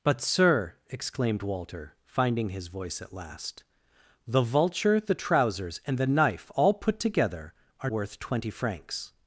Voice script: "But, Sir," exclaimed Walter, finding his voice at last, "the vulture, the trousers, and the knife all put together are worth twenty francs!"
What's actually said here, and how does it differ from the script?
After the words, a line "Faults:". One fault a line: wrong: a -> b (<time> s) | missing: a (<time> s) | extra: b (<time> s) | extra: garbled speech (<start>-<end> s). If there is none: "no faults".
"But, Sir," exclaimed Walter, finding his voice at last, "the vulture, the trousers, and the knife all put together are worth twenty francs!"
Faults:
no faults